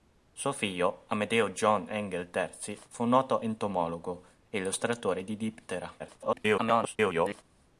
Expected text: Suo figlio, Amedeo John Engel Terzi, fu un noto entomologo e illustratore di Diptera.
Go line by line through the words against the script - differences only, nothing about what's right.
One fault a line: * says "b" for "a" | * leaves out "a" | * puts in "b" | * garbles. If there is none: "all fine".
* garbles